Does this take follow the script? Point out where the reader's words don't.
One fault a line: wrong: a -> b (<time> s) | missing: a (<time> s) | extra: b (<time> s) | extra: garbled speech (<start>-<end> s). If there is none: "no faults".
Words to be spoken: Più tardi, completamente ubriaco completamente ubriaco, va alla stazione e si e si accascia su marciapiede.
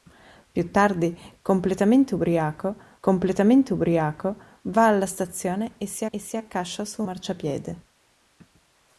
no faults